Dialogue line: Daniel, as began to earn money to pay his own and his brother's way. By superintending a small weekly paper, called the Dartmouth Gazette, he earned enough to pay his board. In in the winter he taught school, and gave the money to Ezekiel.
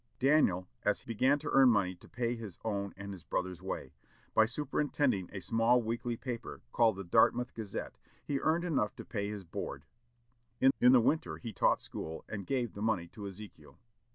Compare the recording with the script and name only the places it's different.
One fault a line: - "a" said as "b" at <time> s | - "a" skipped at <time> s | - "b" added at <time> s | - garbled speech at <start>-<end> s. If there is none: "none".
none